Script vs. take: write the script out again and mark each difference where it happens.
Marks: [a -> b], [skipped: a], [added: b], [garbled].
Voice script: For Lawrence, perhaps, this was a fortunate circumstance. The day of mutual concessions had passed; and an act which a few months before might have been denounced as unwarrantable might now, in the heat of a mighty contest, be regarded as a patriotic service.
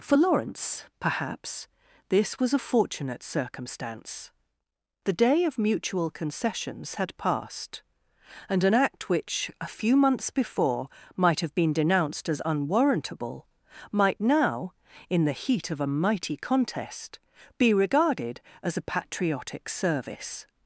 For Lawrence, perhaps, this was a fortunate circumstance. The day of mutual concessions had passed; and an act which a few months before might have been denounced as unwarrantable might now, in the heat of a mighty contest, be regarded as a patriotic service.